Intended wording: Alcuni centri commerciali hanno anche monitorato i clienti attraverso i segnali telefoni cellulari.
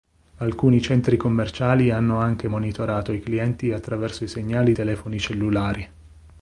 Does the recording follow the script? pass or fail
pass